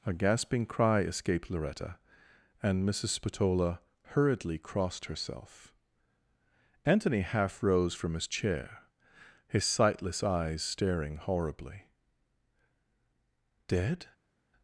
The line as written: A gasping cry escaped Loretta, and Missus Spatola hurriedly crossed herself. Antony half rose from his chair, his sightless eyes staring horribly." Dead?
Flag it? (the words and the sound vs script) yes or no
no